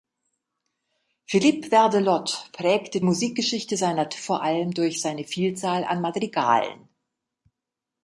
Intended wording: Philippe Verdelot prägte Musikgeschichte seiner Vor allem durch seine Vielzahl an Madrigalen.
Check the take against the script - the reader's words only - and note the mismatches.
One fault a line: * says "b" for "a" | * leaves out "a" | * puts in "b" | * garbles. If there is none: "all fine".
all fine